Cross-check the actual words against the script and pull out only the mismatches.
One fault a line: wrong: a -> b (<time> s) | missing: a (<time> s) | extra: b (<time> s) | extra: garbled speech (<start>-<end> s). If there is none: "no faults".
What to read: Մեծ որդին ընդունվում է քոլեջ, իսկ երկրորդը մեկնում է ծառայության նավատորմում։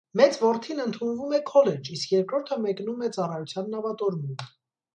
no faults